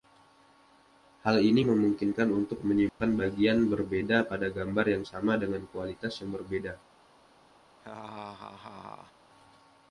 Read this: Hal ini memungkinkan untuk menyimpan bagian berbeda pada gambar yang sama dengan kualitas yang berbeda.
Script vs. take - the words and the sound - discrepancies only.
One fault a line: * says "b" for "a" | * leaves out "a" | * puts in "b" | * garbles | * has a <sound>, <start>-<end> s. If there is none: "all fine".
* has a dropout, 2.9-3.0 s
* has a laugh, 7.8-9.1 s